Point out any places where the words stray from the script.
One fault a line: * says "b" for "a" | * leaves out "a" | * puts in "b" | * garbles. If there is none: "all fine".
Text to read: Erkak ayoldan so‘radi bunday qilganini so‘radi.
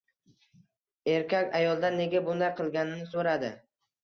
* says "nega" for "so‘radi"